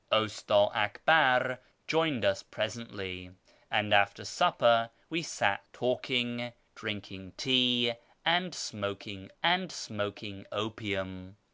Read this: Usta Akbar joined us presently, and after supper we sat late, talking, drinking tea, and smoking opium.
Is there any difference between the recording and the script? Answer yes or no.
yes